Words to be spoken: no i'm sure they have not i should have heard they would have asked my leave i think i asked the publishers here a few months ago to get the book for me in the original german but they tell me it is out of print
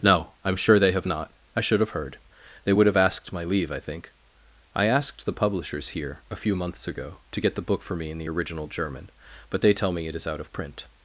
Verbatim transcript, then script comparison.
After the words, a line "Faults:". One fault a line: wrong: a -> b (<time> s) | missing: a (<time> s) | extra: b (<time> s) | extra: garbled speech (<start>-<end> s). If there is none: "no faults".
no i'm sure they have not i should have heard they would have asked my leave i think i asked the publishers here a few months ago to get the book for me in the original german but they tell me it is out of print
Faults:
no faults